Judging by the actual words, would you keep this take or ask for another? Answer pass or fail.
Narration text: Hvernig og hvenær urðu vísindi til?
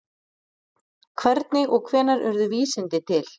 pass